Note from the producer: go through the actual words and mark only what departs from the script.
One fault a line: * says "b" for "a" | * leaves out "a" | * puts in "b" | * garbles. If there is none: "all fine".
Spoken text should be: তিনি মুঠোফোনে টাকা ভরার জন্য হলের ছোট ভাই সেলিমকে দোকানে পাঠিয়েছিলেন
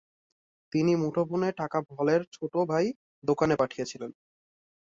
* leaves out "ভরার জন্য"
* leaves out "সেলিমকে"